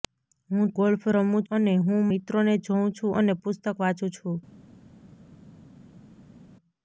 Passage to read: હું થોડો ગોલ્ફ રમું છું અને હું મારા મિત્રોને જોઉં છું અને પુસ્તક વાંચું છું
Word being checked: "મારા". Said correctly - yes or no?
no